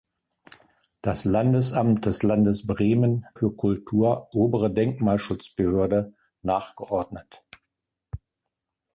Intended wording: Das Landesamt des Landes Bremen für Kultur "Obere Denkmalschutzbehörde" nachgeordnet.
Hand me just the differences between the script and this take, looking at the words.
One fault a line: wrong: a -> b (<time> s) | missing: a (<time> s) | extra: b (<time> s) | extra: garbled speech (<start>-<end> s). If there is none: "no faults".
no faults